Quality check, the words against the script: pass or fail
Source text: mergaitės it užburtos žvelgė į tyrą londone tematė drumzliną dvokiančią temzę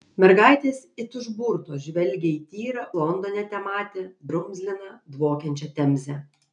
pass